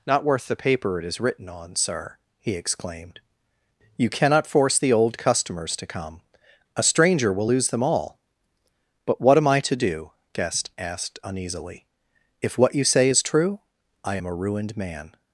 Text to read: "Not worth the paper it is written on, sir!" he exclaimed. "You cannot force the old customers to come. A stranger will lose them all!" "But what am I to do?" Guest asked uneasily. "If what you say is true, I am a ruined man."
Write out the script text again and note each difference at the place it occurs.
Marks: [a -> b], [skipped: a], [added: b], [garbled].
"Not worth the paper it is written on, sir!" he exclaimed. "You cannot force the old customers to come. A stranger will lose them all!" "But what am I to do?" Guest asked uneasily. "If what you say is true, I am a ruined man."